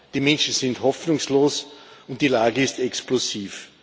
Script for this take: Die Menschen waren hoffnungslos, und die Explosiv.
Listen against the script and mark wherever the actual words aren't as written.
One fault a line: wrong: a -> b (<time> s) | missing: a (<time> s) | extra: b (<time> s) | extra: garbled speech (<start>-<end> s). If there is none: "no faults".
wrong: waren -> sind (0.5 s)
extra: Lage ist (2.3 s)